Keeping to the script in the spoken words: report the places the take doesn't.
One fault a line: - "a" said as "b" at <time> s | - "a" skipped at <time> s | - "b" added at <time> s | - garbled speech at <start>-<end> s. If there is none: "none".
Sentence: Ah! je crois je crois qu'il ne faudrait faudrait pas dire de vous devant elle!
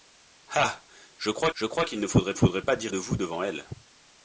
none